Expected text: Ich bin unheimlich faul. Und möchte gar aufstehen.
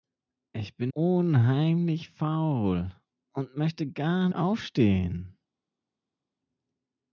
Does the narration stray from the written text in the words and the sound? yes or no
no